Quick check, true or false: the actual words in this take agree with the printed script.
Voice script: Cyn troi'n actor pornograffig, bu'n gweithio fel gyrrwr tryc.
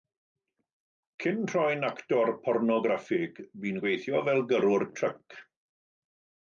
true